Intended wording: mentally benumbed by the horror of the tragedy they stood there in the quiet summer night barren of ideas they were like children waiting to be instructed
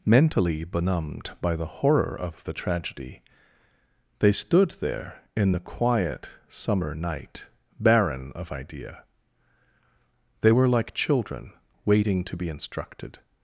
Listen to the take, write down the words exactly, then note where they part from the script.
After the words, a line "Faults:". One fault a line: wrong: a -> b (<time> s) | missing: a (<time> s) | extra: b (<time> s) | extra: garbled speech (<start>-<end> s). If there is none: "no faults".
mentally benumbed by the horror of the tragedy they stood there in the quiet summer night barren of idea they were like children waiting to be instructed
Faults:
wrong: ideas -> idea (8.5 s)